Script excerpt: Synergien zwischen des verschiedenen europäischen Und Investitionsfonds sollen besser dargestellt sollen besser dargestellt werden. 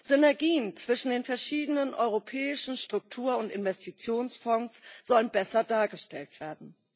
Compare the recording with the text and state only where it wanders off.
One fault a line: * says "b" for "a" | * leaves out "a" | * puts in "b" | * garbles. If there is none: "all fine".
* says "den" for "des"
* puts in "Struktur"
* leaves out "sollen besser dargestellt"